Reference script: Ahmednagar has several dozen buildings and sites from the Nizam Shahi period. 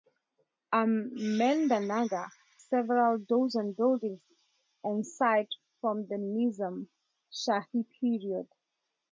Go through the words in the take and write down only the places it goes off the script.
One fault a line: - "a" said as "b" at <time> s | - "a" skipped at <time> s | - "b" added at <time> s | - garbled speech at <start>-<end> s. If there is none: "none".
- "has" skipped at 2.3 s